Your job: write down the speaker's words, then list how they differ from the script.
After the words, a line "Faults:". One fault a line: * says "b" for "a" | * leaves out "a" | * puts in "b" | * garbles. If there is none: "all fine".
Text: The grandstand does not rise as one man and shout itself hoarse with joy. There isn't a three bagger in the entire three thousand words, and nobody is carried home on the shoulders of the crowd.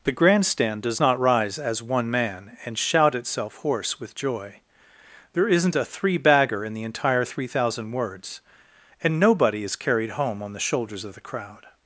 The grandstand does not rise as one man and shout itself hoarse with joy. There isn't a three bagger in the entire three thousand words, and nobody is carried home on the shoulders of the crowd.
Faults:
all fine